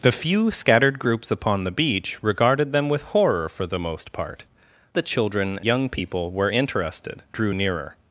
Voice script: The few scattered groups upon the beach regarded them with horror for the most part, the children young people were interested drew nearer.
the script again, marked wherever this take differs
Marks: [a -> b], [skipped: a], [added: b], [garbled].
The few scattered groups upon the beach regarded them with horror for the most part, the children young people were interested drew nearer.